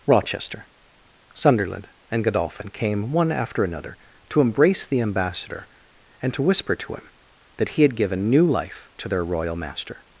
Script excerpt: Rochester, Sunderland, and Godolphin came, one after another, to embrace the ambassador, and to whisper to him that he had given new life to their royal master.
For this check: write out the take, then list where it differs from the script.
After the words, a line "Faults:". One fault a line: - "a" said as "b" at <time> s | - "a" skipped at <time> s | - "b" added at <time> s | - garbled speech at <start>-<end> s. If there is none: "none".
Rochester, Sunderland, and Godolphin came, one after another, to embrace the ambassador, and to whisper to him that he had given new life to their royal master.
Faults:
none